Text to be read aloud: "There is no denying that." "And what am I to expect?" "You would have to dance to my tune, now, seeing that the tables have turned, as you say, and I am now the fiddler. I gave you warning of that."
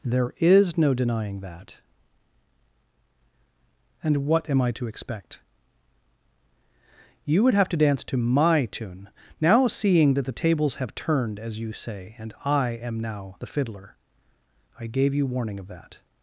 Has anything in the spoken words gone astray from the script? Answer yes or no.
no